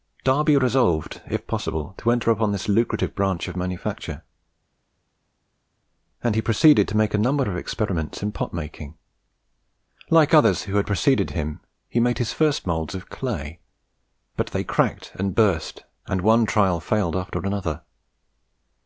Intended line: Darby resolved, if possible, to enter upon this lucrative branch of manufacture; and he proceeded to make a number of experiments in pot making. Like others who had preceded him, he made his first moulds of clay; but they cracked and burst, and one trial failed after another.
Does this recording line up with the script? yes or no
yes